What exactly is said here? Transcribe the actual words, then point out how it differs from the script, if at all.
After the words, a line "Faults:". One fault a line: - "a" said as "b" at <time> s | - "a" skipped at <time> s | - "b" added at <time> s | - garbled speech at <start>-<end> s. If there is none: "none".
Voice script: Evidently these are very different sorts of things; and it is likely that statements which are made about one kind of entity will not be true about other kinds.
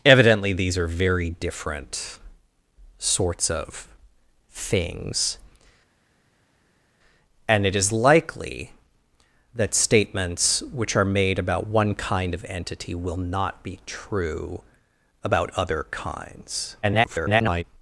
Evidently these are very different sorts of things; and it is likely that statements which are made about one kind of entity will not be true about other kinds. [garbled]
Faults:
- garbled speech at 16.8-17.6 s